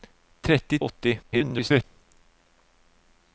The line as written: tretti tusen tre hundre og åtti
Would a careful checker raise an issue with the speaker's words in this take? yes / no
yes